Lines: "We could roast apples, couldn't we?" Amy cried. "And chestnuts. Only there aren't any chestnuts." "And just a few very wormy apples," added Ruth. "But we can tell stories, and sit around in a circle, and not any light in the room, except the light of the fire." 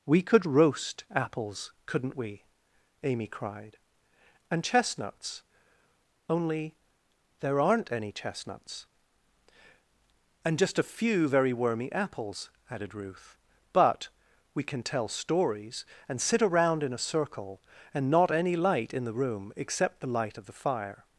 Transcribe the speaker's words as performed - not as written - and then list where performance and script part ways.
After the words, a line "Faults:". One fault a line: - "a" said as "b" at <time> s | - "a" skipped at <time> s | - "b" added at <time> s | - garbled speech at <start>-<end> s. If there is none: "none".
"We could roast apples, couldn't we?" Amy cried. "And chestnuts. Only there aren't any chestnuts." "And just a few very wormy apples," added Ruth. "But we can tell stories, and sit around in a circle, and not any light in the room, except the light of the fire."
Faults:
none